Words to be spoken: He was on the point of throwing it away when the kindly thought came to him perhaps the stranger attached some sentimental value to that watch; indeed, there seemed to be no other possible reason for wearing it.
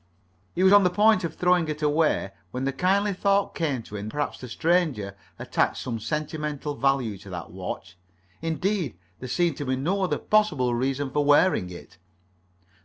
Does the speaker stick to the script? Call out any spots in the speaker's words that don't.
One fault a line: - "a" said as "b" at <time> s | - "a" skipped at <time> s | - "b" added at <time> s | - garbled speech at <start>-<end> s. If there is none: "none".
none